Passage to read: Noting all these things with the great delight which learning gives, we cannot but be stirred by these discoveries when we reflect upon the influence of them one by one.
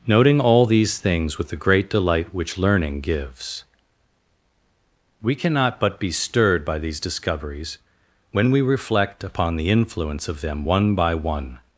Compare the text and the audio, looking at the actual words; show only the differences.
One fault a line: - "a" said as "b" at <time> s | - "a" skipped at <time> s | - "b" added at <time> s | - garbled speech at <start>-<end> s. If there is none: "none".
none